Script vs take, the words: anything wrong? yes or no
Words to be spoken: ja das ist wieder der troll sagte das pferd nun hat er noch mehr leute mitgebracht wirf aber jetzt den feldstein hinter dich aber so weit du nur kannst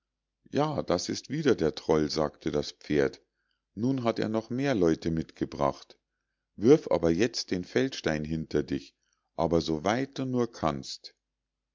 no